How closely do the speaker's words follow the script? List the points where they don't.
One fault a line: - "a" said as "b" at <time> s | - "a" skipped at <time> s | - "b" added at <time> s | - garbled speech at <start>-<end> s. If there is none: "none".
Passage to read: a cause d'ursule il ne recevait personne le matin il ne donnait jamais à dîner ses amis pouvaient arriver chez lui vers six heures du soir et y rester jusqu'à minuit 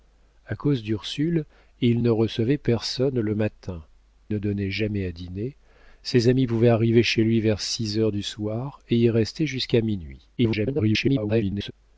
- "il" skipped at 3.8 s
- garbled speech at 10.4-11.7 s